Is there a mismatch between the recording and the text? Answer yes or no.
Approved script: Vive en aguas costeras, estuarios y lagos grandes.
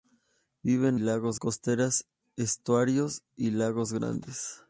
yes